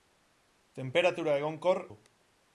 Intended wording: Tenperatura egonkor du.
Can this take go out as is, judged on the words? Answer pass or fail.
pass